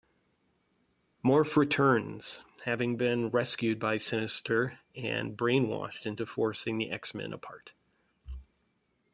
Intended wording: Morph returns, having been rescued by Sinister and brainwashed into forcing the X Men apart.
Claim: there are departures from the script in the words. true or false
false